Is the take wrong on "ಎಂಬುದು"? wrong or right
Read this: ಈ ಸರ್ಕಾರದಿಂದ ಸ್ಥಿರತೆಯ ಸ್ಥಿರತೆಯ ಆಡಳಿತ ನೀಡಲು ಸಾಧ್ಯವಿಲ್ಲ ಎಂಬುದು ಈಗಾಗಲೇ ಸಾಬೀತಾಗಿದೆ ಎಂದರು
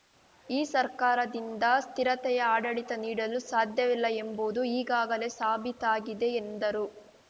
right